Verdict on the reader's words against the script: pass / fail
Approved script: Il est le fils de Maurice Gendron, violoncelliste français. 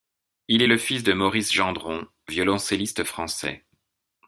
pass